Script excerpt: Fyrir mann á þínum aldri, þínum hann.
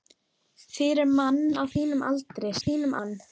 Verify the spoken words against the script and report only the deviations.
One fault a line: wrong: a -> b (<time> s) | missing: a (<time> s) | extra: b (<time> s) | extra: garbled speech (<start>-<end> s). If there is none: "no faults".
no faults